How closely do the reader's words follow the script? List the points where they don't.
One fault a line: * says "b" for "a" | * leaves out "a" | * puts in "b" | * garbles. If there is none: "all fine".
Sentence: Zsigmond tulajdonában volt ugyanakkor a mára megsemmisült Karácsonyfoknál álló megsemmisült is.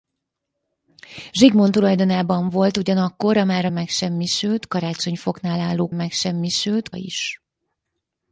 all fine